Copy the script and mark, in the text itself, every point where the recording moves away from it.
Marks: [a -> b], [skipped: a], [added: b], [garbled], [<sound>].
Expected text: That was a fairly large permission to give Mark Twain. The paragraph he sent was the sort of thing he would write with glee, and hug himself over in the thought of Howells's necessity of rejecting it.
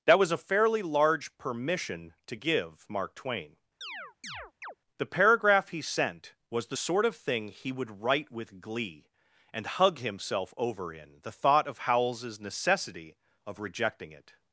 That was a fairly large permission to give Mark Twain. [chirp] The paragraph he sent was the sort of thing he would write with glee, and hug himself over in the thought of Howells's necessity of rejecting it.